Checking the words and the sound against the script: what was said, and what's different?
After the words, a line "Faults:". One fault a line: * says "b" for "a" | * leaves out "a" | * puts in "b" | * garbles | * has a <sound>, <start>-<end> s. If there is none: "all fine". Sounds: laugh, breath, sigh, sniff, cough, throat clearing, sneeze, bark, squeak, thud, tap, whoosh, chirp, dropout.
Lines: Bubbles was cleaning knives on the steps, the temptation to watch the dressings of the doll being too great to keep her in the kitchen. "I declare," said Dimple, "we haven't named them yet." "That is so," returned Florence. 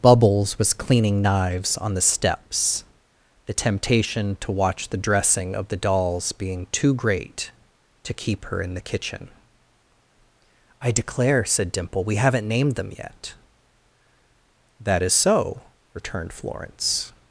Bubbles was cleaning knives on the steps, the temptation to watch the dressing of the dolls being too great to keep her in the kitchen. "I declare," said Dimple, "we haven't named them yet." "That is so," returned Florence.
Faults:
* says "dressing" for "dressings"
* says "dolls" for "doll"